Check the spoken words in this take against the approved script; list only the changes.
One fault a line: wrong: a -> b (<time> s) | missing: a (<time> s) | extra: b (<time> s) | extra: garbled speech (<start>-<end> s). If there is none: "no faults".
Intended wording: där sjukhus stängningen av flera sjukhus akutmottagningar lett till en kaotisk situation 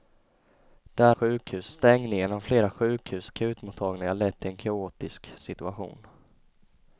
no faults